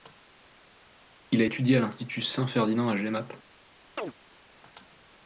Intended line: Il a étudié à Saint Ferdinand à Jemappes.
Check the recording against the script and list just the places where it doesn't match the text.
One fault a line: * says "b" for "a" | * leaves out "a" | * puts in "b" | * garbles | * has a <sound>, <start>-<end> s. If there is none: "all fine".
* puts in "l'Institut"
* has a chirp, 4.0-4.1 s